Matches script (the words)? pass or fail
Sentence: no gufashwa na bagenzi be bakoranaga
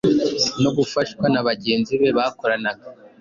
pass